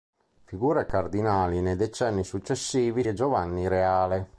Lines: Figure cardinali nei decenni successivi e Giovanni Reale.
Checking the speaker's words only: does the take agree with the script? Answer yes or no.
yes